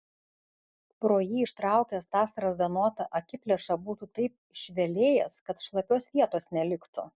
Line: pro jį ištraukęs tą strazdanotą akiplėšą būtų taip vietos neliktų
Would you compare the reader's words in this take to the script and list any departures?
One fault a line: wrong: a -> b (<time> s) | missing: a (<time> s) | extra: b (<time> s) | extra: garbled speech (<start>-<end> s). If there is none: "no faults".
extra: išvelėjęs kad šlapios (4.6 s)